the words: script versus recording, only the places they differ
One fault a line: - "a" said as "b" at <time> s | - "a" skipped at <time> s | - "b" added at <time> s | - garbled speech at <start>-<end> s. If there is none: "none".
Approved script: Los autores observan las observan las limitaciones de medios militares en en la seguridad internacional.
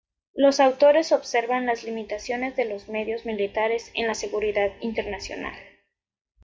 - "observan las" skipped at 1.8 s
- "los" added at 2.6 s
- "en" skipped at 4.1 s